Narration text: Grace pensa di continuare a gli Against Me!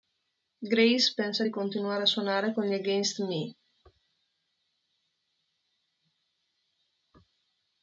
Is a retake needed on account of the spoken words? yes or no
yes